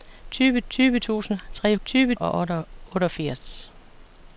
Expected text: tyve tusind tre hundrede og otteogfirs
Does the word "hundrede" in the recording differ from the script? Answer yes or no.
yes